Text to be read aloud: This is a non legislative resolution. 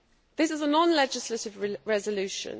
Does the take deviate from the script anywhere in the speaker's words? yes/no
no